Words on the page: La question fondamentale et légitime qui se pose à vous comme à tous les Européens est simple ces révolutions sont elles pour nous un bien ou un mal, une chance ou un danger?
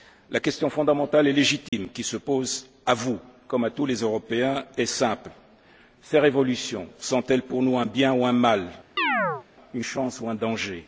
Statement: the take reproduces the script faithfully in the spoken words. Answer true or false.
true